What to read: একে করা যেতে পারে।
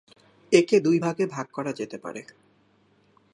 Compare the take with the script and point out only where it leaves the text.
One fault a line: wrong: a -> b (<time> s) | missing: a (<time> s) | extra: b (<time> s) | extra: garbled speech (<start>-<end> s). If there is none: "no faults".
extra: দুই ভাগে ভাগ (0.8 s)